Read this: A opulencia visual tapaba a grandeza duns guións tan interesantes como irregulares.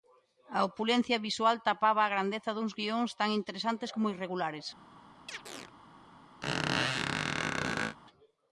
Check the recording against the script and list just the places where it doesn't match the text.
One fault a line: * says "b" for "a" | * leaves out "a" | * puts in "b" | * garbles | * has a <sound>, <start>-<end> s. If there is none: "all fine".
* has a chirp, 5.3-5.7 s
* has a squeak, 6.4-8.0 s